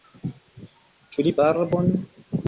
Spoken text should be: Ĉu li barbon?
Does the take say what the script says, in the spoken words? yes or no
yes